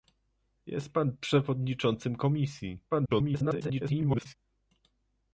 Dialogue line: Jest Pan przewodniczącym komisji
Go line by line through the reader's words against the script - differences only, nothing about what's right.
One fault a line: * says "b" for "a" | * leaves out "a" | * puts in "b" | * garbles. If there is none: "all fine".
* garbles